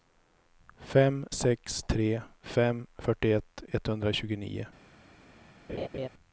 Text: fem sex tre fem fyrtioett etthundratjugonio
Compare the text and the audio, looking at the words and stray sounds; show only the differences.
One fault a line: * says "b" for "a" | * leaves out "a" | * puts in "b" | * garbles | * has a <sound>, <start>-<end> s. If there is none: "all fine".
* has a laugh, 5.7-6.1 s